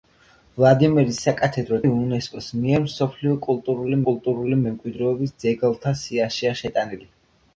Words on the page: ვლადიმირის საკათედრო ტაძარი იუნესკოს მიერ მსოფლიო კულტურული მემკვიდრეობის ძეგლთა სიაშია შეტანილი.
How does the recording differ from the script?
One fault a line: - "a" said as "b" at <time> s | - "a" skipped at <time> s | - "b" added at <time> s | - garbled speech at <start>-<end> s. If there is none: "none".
- "ტაძარი" skipped at 1.8 s
- "კულტურული" added at 4.1 s